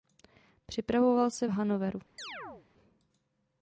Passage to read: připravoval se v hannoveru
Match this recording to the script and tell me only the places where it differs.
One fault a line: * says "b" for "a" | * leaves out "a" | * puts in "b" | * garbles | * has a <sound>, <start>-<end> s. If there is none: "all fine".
* has a chirp, 2.2-2.7 s